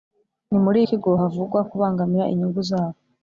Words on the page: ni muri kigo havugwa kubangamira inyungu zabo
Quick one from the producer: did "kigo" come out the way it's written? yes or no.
yes